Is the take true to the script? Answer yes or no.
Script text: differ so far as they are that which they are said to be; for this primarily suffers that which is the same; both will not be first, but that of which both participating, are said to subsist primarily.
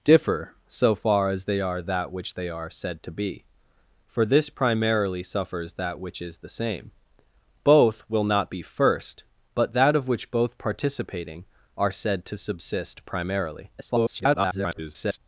no